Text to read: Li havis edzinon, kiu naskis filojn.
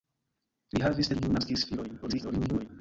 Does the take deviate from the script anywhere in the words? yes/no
yes